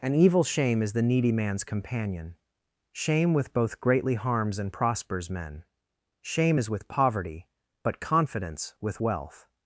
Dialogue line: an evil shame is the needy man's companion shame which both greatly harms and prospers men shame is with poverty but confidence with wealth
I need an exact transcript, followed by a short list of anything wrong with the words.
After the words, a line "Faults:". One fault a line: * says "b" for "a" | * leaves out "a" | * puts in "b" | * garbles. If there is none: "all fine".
an evil shame is the needy man's companion shame with both greatly harms and prospers men shame is with poverty but confidence with wealth
Faults:
* says "with" for "which"